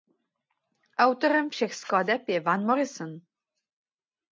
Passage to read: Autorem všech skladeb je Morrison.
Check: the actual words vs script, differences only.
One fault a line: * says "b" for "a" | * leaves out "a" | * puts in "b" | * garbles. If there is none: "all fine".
* puts in "Van"